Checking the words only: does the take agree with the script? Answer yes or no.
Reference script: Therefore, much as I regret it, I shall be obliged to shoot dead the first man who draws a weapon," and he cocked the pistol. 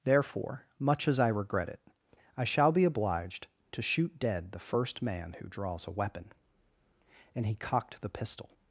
yes